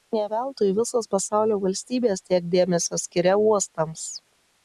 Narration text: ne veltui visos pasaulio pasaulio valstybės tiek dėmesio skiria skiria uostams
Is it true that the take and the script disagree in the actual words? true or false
true